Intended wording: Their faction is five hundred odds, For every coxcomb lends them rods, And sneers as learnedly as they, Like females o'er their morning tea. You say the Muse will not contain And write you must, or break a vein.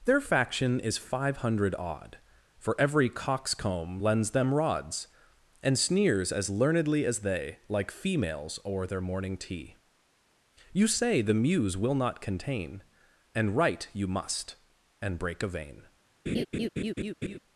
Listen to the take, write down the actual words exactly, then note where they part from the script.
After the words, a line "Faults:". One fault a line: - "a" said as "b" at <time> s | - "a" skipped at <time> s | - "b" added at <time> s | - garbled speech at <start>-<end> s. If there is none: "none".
Their faction is five hundred odd, For every coxcomb lends them rods, And sneers as learnedly as they, Like females o'er their morning tea. You say the Muse will not contain And write you must, and break a vein.
Faults:
- "odds" said as "odd" at 1.8 s
- "or" said as "and" at 15.0 s